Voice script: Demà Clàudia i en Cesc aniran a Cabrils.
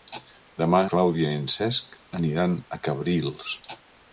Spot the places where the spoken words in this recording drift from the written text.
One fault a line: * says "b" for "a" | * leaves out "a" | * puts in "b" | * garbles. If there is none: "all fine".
all fine